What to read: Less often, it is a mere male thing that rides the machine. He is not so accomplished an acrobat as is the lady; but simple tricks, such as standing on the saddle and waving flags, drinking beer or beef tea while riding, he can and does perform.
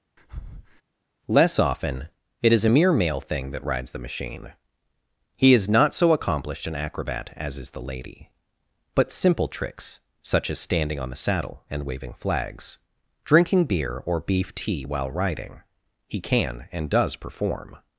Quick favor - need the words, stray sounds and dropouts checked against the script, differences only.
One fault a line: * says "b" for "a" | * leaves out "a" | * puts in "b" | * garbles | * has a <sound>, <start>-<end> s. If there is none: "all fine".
* has a breath, 0.2-0.8 s